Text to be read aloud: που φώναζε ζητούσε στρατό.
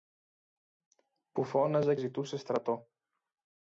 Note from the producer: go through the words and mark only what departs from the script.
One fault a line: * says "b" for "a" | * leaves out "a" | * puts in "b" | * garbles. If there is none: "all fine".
all fine